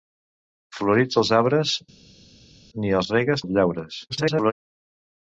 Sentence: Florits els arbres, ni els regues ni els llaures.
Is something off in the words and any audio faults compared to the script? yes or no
yes